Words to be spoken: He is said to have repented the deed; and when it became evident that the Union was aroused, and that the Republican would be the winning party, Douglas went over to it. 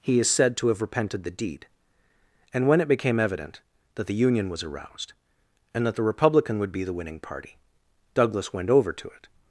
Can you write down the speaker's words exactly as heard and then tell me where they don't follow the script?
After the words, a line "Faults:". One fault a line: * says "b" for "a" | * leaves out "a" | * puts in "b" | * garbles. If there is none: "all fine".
He is said to have repented the deed; and when it became evident that the Union was aroused, and that the Republican would be the winning party, Douglas went over to it.
Faults:
all fine